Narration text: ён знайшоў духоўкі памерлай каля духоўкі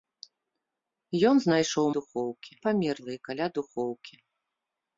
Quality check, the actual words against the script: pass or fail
pass